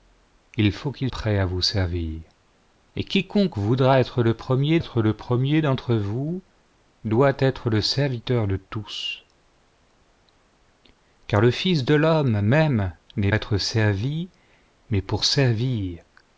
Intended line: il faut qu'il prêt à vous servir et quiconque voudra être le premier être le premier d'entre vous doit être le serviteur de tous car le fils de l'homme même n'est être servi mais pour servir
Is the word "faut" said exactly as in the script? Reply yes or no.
yes